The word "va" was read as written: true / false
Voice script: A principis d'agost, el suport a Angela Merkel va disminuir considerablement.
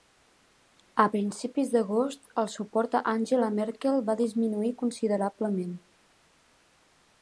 true